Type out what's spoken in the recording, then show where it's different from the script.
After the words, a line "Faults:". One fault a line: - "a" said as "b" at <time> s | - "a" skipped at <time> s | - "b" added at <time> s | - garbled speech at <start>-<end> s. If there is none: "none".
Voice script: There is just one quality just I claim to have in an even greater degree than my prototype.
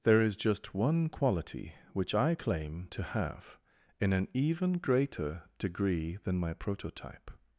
There is just one quality which I claim to have in an even greater degree than my prototype.
Faults:
- "just" said as "which" at 1.9 s